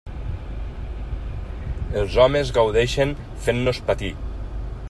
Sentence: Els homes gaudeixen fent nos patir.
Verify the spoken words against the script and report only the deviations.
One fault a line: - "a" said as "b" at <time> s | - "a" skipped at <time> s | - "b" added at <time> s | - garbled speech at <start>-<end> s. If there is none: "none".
none